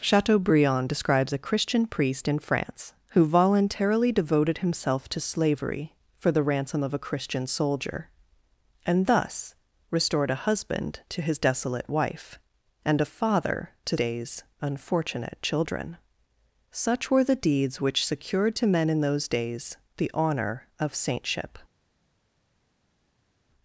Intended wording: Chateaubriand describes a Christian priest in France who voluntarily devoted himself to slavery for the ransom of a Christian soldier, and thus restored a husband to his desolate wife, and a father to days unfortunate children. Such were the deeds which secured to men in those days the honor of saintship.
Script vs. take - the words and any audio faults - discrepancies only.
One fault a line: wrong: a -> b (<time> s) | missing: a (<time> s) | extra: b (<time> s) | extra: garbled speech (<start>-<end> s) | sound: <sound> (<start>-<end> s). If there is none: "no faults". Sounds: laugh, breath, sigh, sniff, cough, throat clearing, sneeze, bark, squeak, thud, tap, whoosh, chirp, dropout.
no faults